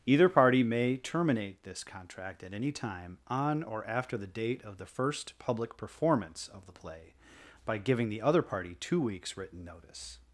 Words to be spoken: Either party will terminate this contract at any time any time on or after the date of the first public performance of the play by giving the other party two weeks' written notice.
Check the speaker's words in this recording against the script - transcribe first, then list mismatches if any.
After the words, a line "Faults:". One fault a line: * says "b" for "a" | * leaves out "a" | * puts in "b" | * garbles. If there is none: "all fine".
Either party may terminate this contract at any time on or after the date of the first public performance of the play by giving the other party two weeks' written notice.
Faults:
* says "may" for "will"
* leaves out "any time"